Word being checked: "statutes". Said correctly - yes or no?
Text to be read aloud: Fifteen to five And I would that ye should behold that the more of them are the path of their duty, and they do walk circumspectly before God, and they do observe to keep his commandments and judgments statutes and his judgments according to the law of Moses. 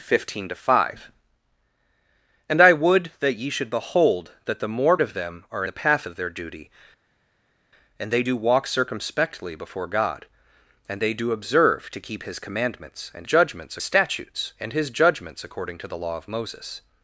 yes